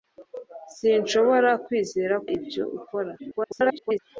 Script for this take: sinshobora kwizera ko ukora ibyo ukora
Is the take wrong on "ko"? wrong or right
wrong